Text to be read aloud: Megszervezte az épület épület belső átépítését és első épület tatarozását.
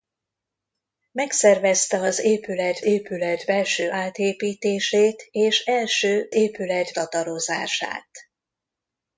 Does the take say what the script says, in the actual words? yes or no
yes